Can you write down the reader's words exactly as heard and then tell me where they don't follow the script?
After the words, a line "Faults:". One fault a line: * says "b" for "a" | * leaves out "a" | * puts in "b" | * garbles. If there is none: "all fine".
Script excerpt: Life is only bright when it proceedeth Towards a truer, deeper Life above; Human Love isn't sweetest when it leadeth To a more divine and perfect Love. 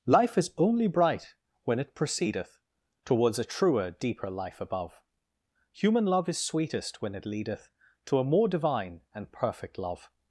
Life is only bright when it proceedeth Towards a truer, deeper Life above; Human Love is sweetest when it leadeth To a more divine and perfect Love.
Faults:
* says "is" for "isn't"